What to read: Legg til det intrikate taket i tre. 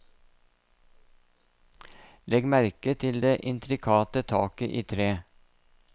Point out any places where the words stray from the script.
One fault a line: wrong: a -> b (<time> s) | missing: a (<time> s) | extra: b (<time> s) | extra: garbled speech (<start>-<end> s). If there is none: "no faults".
extra: merke (2.5 s)